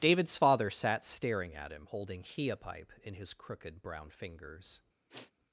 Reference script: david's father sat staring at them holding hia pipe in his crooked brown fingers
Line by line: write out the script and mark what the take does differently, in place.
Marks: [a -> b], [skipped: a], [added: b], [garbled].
david's father sat staring at [them -> him] holding hia pipe in his crooked brown fingers